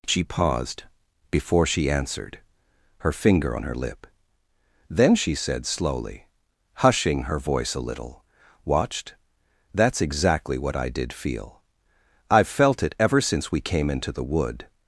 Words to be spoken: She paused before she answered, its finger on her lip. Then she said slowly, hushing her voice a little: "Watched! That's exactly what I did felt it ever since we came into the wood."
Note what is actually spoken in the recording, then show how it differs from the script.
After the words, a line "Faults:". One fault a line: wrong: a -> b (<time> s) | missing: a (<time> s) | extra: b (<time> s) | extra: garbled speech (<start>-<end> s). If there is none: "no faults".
She paused before she answered, her finger on her lip. Then she said slowly, hushing her voice a little: "Watched! That's exactly what I did feel. I've felt it ever since we came into the wood."
Faults:
wrong: its -> her (3.0 s)
extra: feel I've (11.1 s)